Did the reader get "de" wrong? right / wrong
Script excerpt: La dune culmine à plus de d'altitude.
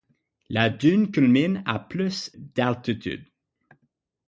wrong